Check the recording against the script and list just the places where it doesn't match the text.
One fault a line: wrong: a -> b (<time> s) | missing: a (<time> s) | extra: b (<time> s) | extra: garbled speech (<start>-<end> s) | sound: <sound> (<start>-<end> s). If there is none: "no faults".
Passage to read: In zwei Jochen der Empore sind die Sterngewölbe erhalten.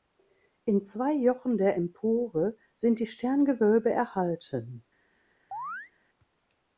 sound: chirp (5.5-5.9 s)